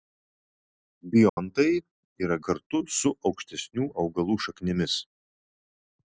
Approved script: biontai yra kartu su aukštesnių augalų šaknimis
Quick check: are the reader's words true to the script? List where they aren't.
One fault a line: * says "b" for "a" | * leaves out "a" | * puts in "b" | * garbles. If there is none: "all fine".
all fine